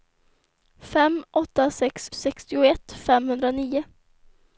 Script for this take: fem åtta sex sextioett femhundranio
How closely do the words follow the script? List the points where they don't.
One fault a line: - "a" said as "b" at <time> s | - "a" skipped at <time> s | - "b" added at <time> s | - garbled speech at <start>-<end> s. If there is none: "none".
none